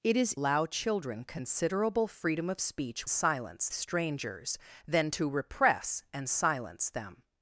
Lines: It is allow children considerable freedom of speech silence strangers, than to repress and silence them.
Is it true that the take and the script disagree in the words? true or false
false